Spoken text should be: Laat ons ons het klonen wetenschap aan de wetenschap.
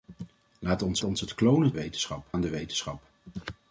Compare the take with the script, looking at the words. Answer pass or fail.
pass